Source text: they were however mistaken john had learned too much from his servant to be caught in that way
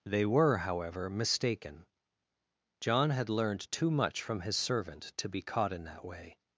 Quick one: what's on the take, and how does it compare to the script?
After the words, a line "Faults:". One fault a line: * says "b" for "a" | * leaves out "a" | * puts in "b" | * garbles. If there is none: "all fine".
they were however mistaken john had learned too much from his servant to be caught in that way
Faults:
all fine